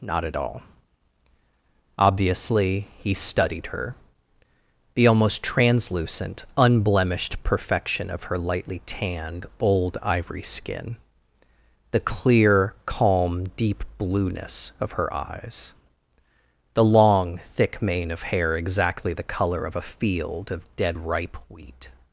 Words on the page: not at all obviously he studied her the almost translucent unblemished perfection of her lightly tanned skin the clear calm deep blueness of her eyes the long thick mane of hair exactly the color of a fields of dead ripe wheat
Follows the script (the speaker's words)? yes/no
no